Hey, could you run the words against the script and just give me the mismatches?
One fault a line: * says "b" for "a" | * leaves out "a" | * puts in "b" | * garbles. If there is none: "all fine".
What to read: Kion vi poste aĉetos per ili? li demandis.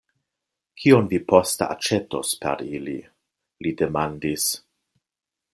all fine